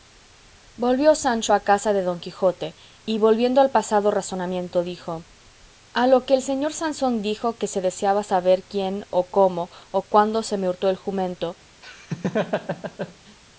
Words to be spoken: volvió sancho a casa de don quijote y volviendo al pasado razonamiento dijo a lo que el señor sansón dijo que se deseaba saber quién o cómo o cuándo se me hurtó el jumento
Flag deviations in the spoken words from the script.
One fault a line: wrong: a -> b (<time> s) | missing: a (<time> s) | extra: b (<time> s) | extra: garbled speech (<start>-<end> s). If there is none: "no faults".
no faults